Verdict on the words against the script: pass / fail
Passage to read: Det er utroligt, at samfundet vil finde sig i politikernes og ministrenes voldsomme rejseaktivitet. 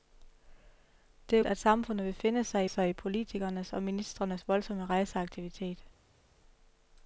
fail